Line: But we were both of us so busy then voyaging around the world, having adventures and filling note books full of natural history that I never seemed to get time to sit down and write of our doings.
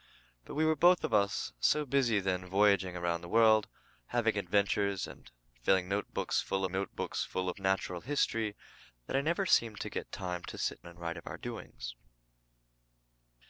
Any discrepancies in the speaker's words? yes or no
yes